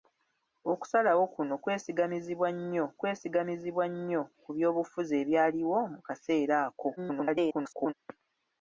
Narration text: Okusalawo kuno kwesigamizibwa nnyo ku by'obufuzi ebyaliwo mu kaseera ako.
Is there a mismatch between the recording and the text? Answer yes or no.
yes